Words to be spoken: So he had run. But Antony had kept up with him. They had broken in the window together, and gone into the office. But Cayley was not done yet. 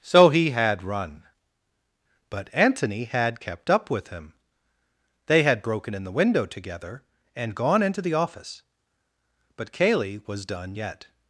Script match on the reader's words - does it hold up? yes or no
no